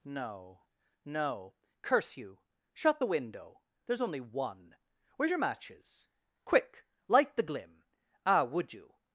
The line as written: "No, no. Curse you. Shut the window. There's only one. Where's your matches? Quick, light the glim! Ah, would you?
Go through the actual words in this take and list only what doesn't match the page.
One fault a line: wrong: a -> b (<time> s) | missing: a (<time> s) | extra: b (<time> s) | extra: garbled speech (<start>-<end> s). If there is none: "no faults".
no faults